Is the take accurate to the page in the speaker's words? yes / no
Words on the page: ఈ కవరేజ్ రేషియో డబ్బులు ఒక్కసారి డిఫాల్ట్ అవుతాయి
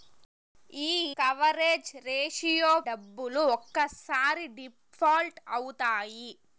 yes